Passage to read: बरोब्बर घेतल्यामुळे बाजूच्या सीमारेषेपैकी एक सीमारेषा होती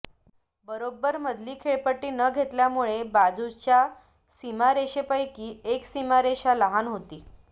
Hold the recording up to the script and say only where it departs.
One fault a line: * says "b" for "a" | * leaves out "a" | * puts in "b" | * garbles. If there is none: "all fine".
* puts in "मधली खेळपट्टी न"
* puts in "लहान"